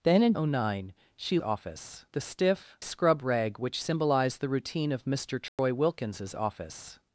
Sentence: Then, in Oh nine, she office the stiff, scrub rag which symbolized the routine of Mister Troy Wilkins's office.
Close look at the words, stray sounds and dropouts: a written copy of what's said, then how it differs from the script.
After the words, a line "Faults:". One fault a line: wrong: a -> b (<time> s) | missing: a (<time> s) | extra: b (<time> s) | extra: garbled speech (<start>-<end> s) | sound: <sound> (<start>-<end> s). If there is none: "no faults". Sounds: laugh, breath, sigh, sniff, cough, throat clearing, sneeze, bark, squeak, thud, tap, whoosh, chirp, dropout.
Then, in Oh nine, she office the stiff, scrub rag which symbolized the routine of Mister Troy Wilkins's office.
Faults:
sound: dropout (5.5-5.6 s)